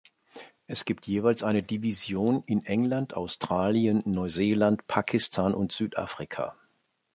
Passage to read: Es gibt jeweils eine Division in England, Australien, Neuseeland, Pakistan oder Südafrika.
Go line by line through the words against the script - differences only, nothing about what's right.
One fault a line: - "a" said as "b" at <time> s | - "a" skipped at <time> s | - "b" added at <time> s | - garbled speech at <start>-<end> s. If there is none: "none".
- "oder" said as "und" at 5.5 s